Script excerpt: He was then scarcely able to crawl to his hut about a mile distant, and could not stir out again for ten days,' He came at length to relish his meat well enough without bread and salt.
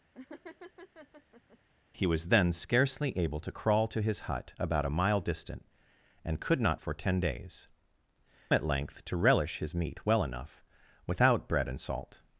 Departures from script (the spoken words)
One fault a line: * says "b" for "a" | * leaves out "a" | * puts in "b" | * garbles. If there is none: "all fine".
* leaves out "stir out again"
* leaves out "He came"